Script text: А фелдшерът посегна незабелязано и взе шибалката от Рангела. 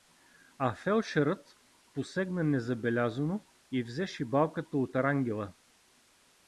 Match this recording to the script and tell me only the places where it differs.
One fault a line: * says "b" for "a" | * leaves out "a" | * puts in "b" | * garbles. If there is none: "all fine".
all fine